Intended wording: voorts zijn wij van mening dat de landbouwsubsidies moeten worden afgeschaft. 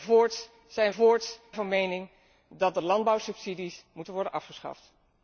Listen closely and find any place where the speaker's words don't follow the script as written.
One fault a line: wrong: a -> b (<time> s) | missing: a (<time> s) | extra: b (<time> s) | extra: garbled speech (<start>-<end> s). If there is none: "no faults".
wrong: wij -> voorts (0.9 s)